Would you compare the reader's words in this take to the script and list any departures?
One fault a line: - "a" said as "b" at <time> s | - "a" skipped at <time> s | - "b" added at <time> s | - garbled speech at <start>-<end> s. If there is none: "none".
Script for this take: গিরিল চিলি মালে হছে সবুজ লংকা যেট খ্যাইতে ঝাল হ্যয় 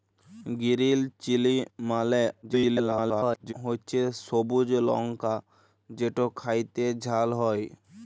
- garbled speech at 2.4-3.5 s